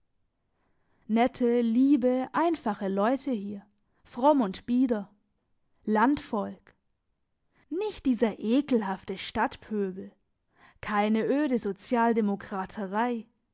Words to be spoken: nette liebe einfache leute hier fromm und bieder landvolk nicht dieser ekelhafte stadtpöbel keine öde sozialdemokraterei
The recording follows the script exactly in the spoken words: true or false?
true